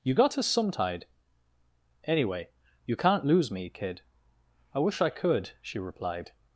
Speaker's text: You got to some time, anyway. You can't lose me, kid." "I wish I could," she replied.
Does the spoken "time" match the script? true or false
false